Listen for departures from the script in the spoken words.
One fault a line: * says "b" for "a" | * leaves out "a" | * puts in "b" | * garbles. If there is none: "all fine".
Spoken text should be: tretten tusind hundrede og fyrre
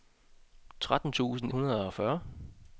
all fine